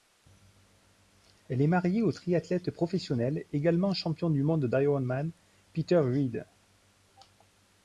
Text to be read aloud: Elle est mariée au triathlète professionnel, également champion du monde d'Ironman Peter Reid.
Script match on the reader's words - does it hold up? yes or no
yes